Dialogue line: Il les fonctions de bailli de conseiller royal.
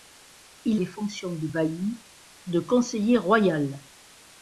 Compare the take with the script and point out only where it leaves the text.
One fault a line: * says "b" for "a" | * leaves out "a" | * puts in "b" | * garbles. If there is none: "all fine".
all fine